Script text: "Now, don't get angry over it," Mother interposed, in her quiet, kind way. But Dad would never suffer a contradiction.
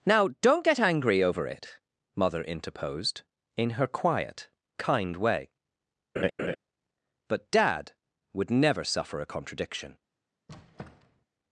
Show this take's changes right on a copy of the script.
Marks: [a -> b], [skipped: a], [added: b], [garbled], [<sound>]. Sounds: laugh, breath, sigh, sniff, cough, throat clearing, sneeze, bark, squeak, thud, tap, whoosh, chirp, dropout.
"Now, don't get angry over it," Mother interposed, in her quiet, kind way. [laugh] But Dad would never suffer a contradiction. [squeak]